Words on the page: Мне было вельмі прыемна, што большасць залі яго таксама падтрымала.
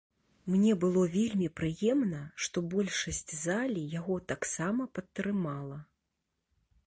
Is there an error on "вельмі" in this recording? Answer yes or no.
no